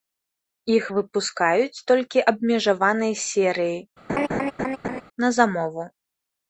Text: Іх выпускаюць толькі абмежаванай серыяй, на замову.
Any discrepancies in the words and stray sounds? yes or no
yes